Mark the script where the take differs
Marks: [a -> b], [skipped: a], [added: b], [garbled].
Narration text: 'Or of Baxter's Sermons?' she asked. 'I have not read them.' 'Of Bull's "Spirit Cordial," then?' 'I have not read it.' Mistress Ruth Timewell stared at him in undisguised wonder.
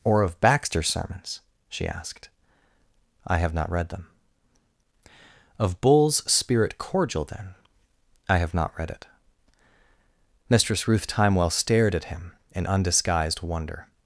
'Or of Baxter's Sermons?' she asked. 'I have not read them.' 'Of Bull's "Spirit Cordial," then?' 'I have not read it.' Mistress Ruth Timewell stared at him in undisguised wonder.